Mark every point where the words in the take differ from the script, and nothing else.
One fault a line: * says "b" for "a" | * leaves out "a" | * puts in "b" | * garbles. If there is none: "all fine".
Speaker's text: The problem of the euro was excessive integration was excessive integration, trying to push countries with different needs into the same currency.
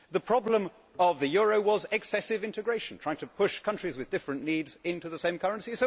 * leaves out "was excessive integration"